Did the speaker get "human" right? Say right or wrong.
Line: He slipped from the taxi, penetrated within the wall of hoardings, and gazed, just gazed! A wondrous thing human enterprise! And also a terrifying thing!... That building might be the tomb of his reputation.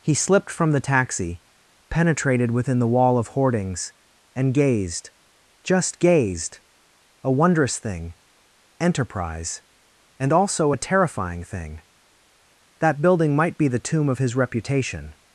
wrong